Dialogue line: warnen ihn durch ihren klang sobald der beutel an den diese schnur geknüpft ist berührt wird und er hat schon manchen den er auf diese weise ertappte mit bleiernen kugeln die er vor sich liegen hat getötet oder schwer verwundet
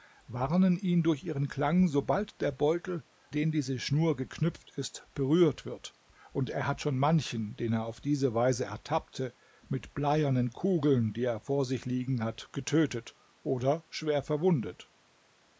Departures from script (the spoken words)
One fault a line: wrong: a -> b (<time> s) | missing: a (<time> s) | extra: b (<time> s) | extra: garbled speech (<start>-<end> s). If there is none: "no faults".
missing: an (3.0 s)